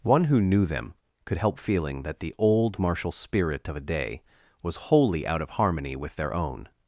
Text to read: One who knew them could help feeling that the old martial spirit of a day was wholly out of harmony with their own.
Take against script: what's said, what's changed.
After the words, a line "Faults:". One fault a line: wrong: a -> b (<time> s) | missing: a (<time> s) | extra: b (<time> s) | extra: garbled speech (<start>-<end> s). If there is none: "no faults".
One who knew them could help feeling that the old martial spirit of a day was wholly out of harmony with their own.
Faults:
no faults